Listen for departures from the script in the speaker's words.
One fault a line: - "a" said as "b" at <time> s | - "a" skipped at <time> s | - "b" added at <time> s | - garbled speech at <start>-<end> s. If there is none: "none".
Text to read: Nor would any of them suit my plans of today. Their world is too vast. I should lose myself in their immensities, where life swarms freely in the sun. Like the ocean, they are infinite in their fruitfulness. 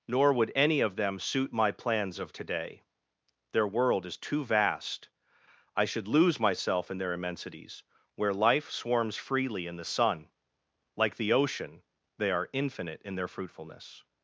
none